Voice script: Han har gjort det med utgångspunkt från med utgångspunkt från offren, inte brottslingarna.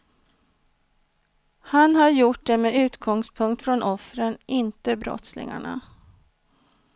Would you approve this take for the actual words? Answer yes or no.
no